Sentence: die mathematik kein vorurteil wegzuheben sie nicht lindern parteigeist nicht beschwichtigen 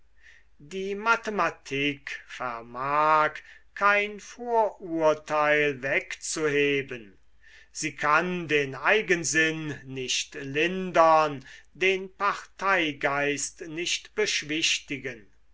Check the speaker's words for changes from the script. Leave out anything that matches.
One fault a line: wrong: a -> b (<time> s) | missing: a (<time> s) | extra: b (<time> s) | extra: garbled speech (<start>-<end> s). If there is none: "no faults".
extra: vermag (2.2 s)
extra: kann den eigensinn (8.0 s)
extra: den (11.8 s)